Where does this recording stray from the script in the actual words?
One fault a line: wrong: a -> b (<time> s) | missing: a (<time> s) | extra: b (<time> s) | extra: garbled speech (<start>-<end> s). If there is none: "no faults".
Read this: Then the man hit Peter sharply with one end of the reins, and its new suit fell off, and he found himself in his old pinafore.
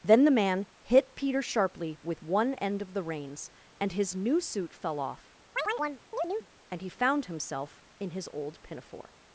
wrong: its -> his (3.9 s)